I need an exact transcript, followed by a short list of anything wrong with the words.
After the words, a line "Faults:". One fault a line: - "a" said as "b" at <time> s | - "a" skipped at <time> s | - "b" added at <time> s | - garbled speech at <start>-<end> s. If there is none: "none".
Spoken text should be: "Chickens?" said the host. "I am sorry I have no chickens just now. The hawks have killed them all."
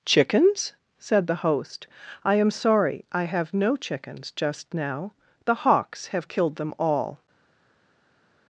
"Chickens?" said the host. "I am sorry I have no chickens just now. The hawks have killed them all."
Faults:
none